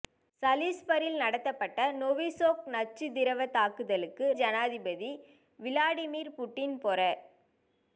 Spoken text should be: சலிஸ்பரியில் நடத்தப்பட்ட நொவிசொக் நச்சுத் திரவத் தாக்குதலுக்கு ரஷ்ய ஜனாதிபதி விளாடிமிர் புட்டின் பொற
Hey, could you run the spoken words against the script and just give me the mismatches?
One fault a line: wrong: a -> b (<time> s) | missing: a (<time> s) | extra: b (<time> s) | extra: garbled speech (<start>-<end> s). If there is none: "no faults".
missing: ரஷ்ய (4.3 s)